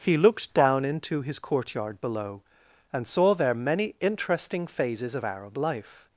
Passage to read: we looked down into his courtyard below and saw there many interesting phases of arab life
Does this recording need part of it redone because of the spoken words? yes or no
yes